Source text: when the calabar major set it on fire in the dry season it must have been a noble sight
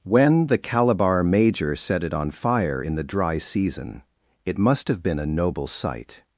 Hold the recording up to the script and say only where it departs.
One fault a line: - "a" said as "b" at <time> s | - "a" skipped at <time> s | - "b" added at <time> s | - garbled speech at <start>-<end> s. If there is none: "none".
none